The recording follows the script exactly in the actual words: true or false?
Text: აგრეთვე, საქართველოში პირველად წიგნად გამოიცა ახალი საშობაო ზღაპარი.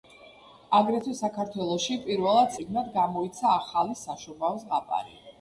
true